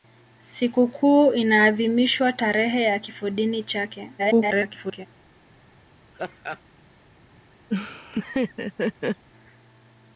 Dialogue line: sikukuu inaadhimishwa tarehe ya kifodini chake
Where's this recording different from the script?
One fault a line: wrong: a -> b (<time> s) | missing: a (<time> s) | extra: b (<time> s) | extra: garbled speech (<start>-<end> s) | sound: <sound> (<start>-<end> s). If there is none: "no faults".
extra: garbled speech (4.2-5.1 s)
sound: laugh (6.1-6.6 s)
sound: laugh (7.7-9.2 s)